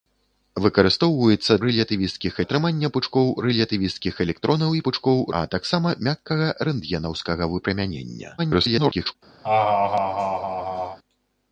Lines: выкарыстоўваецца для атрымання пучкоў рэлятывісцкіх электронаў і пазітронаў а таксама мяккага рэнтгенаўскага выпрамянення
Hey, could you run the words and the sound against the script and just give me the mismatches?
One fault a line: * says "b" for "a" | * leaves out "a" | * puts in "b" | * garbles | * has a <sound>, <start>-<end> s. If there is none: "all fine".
* says "рэлятывісцкіх" for "для"
* says "пучкоў" for "пазітронаў"
* garbles
* has a laugh, 9.4-11.0 s